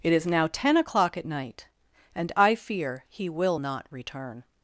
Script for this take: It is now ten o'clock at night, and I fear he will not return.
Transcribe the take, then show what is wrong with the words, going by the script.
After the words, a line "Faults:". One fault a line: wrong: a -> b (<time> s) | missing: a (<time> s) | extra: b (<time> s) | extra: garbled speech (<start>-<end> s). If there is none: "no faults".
It is now ten o'clock at night, and I fear he will not return.
Faults:
no faults